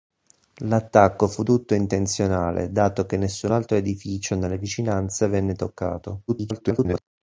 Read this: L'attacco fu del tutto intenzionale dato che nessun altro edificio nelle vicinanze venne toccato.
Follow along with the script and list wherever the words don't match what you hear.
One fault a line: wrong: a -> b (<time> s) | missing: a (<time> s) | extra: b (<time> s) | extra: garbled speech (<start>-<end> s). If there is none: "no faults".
missing: del (1.4 s)
extra: garbled speech (6.3-7.0 s)